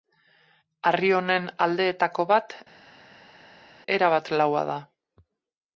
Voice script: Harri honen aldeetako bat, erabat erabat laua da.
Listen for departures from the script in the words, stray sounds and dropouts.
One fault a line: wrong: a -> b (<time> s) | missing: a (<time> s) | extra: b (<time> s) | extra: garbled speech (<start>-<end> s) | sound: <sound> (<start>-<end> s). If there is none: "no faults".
missing: erabat (4.3 s)